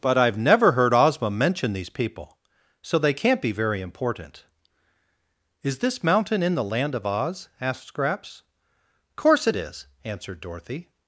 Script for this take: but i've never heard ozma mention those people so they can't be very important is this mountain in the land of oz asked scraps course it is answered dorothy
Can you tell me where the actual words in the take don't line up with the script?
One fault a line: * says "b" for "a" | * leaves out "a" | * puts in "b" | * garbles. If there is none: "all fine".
* says "these" for "those"